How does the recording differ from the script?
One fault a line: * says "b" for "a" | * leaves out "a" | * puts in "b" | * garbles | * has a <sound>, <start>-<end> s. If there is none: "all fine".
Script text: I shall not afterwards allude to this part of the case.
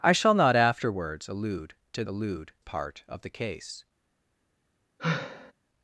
* says "allude" for "this"
* has a sigh, 5.0-5.5 s